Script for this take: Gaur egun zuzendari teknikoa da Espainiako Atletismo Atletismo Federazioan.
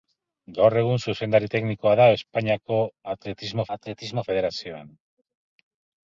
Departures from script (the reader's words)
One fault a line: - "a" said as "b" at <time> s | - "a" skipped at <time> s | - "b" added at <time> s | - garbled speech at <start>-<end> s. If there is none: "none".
none